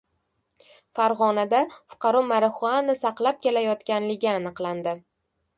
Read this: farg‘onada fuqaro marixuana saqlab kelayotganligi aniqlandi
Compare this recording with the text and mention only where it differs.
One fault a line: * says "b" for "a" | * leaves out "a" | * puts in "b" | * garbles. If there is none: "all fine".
all fine